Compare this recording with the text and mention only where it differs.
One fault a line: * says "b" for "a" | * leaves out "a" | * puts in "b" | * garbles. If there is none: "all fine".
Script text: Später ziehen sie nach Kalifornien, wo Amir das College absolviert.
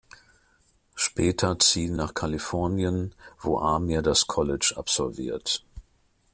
* leaves out "sie"